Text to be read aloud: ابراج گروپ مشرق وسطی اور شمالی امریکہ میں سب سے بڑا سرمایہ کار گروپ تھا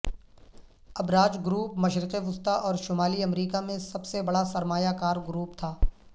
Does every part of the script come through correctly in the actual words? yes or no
yes